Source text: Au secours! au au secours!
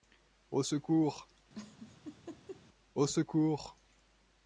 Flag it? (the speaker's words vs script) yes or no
yes